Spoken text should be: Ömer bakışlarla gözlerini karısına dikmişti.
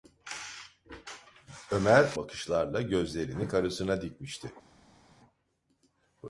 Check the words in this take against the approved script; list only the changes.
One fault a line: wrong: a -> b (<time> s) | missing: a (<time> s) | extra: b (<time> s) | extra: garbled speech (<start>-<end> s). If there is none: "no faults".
no faults